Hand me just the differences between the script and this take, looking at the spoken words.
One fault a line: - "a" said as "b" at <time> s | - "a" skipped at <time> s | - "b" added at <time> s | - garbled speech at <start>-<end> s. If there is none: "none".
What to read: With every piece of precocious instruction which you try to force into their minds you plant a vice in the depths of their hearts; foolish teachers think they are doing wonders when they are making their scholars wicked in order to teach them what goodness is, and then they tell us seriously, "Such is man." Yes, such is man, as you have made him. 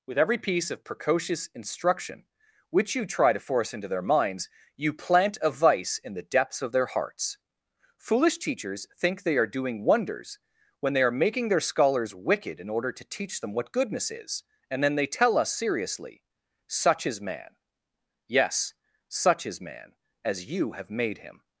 none